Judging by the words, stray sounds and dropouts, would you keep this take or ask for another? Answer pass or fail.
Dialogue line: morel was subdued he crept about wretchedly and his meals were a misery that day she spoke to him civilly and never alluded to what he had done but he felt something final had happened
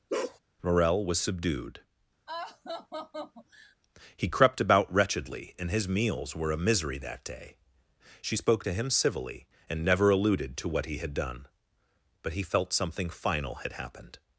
fail